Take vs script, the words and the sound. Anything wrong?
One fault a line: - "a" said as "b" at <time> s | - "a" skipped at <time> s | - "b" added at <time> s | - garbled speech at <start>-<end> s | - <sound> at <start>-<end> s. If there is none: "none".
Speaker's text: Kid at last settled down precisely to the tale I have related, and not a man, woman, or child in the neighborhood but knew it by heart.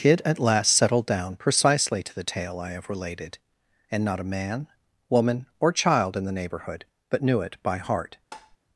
- tap at 8.3-8.6 s